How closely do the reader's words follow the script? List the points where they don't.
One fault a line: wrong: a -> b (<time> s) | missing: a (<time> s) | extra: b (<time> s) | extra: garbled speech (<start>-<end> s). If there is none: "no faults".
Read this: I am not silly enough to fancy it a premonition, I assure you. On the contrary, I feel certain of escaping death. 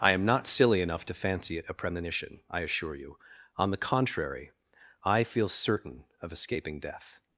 no faults